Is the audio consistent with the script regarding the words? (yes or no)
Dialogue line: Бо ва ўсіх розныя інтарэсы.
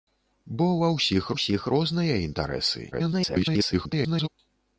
no